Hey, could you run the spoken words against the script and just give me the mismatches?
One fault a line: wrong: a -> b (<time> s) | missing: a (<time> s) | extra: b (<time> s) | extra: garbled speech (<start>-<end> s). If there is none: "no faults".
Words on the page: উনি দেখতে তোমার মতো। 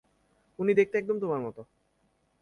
extra: একদম (1.0 s)